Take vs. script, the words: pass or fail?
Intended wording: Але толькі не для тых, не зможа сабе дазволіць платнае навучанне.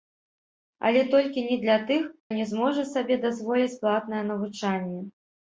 pass